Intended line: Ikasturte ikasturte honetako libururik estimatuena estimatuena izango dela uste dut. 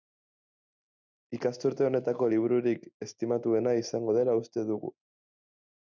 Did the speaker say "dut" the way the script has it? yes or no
no